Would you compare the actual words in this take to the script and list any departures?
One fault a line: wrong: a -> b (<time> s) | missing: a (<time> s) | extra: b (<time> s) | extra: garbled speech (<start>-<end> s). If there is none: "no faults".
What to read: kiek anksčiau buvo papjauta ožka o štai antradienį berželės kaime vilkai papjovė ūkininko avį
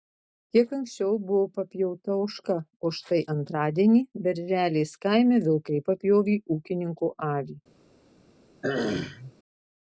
no faults